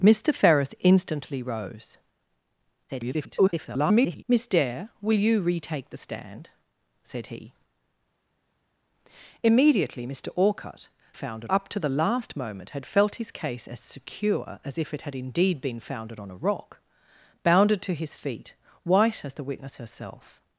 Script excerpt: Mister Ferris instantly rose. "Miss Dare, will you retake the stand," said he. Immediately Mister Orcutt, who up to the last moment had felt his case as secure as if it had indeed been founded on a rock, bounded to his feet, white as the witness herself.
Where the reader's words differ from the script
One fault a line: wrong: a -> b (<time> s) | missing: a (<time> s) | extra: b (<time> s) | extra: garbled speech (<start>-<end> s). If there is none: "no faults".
extra: garbled speech (2.9-4.2 s)
wrong: who -> founded (11.1 s)